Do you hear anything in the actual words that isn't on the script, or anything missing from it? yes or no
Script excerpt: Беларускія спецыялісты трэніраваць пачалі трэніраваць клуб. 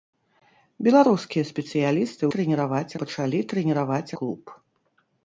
no